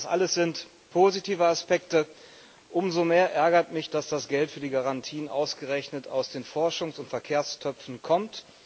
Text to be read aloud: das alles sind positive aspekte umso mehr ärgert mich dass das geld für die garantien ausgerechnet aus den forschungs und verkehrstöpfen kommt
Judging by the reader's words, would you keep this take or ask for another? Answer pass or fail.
pass